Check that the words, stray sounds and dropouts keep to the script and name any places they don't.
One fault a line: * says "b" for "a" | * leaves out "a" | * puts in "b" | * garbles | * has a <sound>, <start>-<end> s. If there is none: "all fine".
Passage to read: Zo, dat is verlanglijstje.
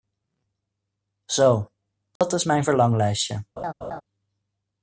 * has a dropout, 2.2-2.2 s
* puts in "mijn"
* has a laugh, 3.6-4.0 s